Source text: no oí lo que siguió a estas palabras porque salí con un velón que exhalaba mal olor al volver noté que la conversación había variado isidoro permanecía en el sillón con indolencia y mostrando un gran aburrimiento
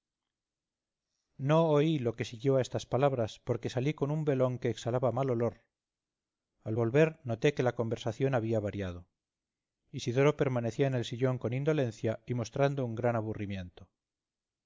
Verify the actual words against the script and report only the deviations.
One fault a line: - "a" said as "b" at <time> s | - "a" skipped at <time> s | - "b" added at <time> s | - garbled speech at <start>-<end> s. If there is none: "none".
none